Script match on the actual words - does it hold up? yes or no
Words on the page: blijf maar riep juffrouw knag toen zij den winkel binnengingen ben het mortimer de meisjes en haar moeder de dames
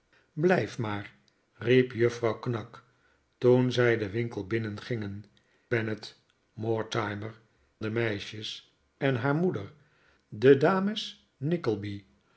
yes